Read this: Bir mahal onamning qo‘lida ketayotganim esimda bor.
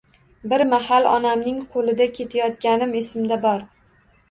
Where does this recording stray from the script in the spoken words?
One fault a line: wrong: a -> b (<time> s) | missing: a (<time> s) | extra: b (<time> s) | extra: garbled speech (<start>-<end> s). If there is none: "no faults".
no faults